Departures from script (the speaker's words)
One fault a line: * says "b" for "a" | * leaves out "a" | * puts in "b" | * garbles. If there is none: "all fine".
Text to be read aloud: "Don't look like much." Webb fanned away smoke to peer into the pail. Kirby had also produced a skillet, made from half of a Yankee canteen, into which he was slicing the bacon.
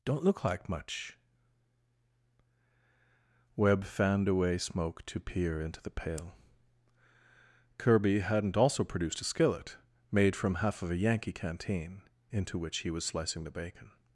* says "hadn't" for "had"